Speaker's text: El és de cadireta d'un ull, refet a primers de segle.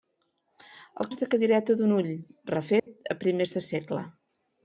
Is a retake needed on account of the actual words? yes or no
no